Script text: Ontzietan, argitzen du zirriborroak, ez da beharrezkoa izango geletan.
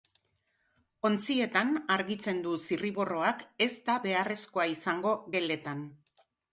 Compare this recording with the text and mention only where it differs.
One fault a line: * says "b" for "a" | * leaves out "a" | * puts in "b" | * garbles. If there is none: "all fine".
all fine